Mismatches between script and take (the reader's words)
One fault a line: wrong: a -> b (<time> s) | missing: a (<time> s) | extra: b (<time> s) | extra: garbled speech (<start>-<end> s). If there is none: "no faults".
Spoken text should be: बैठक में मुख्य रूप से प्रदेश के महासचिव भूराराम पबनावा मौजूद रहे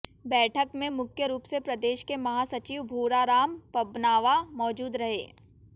no faults